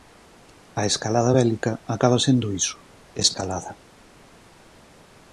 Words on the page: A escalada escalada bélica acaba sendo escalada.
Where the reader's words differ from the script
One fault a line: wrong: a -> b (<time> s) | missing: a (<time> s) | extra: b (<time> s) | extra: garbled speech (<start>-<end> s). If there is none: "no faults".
missing: escalada (1.3 s)
extra: iso (2.6 s)